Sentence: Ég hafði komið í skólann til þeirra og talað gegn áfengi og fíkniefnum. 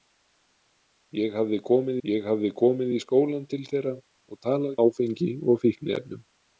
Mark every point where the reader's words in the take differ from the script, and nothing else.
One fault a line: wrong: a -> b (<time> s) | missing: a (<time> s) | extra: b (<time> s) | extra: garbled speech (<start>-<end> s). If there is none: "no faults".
extra: ég hafði komið (2.1 s)
missing: gegn (4.8 s)